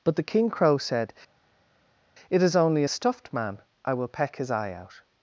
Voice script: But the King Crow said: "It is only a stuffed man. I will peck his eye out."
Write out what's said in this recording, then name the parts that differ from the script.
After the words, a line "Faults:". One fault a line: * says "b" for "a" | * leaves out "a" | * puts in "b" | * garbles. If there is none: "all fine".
But the King Crow said: "It is only a stuffed man. I will peck his eye out."
Faults:
all fine